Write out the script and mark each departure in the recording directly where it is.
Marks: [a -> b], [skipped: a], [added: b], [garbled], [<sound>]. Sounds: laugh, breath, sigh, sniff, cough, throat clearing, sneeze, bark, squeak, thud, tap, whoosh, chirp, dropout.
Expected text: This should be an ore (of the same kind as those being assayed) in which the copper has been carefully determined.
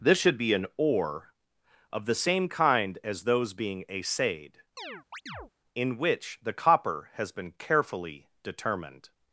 This should be an ore (of the same kind as those being assayed) [chirp] in which the copper has been carefully determined.